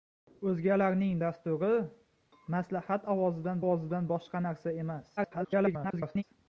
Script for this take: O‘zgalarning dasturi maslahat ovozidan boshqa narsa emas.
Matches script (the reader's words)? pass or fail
fail